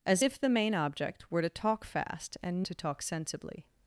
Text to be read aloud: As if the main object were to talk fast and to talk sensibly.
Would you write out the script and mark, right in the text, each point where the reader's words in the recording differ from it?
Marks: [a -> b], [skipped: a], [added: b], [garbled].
As if the main object were to talk fast and to talk sensibly.